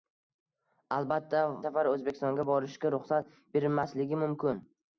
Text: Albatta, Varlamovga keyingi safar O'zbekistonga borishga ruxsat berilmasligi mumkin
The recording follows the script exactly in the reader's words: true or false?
false